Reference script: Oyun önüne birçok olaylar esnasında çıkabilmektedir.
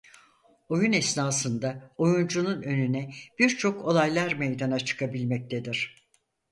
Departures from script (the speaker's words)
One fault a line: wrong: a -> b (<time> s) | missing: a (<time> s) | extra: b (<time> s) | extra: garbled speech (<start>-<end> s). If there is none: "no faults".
extra: esnasında oyuncunun (0.9 s)
wrong: esnasında -> meydana (4.3 s)